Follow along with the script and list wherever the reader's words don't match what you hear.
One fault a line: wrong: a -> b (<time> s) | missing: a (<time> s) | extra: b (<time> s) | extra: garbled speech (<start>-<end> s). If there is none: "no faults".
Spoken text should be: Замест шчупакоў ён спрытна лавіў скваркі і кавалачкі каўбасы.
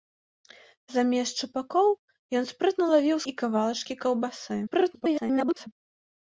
missing: скваркі (3.2 s)
extra: garbled speech (4.7-5.7 s)